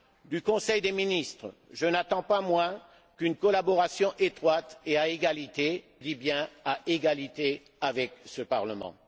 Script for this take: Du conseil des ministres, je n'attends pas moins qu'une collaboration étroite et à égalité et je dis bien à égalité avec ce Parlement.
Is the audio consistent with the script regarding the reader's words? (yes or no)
no